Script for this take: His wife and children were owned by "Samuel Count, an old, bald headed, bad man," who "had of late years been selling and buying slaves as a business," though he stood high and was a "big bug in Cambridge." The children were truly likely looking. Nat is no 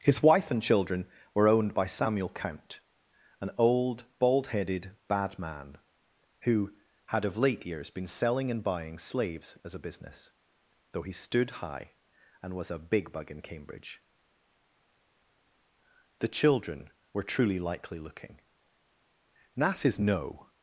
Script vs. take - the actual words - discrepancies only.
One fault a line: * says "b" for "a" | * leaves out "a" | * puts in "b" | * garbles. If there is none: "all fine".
all fine